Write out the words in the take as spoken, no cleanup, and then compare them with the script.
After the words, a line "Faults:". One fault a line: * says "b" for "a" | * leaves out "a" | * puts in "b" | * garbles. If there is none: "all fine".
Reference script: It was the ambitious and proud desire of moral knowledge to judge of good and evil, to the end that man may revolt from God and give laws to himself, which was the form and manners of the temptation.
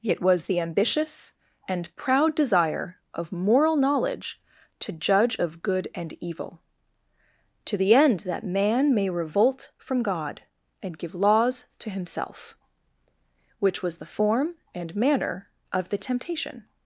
It was the ambitious and proud desire of moral knowledge to judge of good and evil, to the end that man may revolt from God and give laws to himself, which was the form and manner of the temptation.
Faults:
* says "manner" for "manners"